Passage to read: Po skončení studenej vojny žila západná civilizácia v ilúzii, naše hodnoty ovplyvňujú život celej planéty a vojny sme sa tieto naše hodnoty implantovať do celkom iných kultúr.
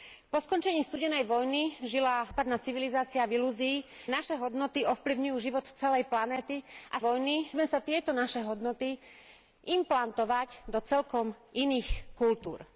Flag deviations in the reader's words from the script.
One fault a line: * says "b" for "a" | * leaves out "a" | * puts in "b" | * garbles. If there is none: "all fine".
all fine